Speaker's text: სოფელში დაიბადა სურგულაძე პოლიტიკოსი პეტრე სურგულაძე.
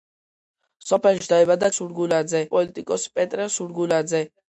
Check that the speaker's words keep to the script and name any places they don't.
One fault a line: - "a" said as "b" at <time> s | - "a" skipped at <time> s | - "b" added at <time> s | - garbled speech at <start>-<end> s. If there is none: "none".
none